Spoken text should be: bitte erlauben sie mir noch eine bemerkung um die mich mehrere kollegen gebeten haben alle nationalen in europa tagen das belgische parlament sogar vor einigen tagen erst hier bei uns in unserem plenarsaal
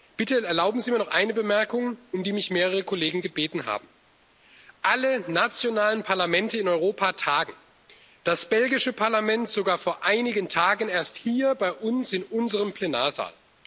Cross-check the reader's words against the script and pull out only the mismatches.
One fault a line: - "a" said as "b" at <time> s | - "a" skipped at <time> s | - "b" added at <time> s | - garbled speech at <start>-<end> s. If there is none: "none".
- "parlamente" added at 6.0 s